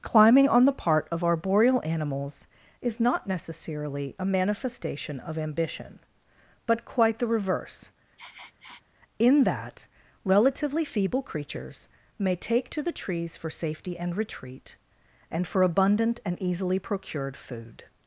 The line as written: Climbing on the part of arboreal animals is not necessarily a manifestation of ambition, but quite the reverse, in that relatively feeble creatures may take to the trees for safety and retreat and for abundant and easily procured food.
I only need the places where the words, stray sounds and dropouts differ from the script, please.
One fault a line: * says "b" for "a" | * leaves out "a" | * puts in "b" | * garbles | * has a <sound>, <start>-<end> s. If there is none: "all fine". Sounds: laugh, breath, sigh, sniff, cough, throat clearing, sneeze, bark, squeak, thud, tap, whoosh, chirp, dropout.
* has a sniff, 8.2-8.8 s